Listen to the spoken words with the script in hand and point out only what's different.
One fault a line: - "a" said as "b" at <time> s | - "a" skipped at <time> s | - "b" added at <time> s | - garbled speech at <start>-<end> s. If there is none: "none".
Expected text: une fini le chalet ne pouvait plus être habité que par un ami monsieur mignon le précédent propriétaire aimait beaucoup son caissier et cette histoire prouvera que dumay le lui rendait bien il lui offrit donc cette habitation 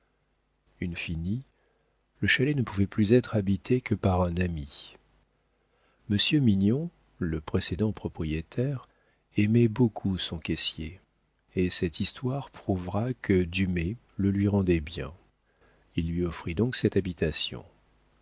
none